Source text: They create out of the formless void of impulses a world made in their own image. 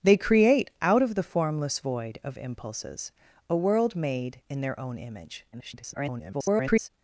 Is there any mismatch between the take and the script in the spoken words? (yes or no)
yes